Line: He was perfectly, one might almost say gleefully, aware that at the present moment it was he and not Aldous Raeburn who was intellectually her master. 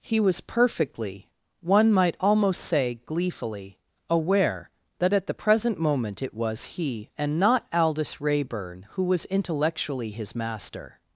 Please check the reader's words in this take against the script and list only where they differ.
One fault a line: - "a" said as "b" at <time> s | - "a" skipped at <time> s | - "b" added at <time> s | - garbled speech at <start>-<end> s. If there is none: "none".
- "her" said as "his" at 10.1 s